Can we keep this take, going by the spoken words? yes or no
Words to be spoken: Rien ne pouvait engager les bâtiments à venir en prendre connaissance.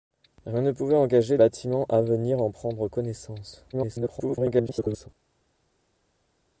no